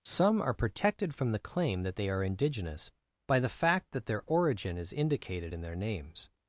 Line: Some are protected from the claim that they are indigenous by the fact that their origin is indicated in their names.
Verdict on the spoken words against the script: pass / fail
pass